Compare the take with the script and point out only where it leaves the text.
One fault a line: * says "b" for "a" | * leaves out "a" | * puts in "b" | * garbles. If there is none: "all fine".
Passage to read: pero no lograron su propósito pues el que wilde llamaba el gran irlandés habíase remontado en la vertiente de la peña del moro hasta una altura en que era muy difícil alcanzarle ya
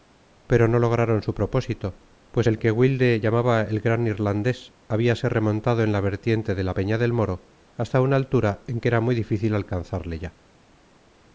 all fine